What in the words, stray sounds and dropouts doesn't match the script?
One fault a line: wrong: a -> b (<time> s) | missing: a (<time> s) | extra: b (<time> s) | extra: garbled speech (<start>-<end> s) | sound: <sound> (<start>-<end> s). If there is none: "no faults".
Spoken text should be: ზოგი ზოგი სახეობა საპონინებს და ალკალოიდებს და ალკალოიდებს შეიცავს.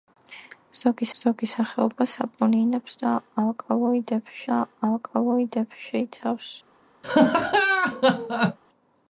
sound: laugh (7.0-8.6 s)